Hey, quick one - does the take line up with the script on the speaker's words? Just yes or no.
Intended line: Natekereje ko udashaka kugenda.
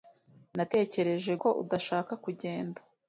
yes